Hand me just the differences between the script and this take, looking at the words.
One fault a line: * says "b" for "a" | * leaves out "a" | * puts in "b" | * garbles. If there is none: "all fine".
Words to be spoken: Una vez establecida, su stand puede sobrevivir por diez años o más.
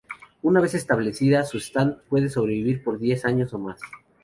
all fine